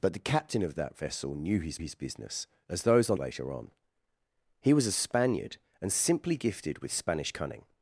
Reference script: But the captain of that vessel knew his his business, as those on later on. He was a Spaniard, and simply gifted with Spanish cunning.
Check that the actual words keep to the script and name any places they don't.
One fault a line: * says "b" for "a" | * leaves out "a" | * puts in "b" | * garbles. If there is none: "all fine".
all fine